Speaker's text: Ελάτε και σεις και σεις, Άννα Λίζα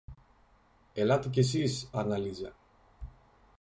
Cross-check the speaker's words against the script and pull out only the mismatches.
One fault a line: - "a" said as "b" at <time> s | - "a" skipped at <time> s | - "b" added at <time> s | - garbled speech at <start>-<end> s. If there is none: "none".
- "και σεις" skipped at 1.9 s